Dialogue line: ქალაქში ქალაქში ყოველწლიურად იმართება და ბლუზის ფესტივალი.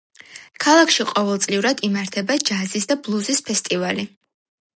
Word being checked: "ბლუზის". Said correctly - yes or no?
yes